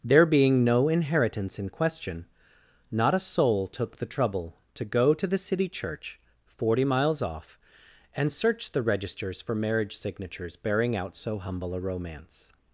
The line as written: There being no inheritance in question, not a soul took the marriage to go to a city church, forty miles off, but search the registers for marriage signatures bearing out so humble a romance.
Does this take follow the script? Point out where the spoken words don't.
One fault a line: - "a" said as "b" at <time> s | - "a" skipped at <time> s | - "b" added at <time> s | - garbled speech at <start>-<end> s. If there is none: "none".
- "marriage" said as "trouble" at 4.0 s
- "a" said as "the" at 5.3 s
- "but" said as "and" at 8.2 s